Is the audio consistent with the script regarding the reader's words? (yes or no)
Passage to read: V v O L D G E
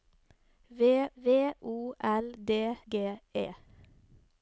yes